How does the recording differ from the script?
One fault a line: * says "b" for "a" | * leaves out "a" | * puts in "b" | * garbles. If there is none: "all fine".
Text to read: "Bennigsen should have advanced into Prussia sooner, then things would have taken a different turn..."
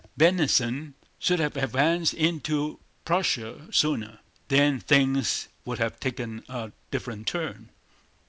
all fine